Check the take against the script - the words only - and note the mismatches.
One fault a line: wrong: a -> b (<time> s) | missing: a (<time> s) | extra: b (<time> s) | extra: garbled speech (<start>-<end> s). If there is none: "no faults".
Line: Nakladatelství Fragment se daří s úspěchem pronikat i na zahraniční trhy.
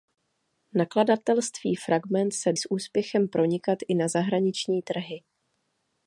missing: daří (2.5 s)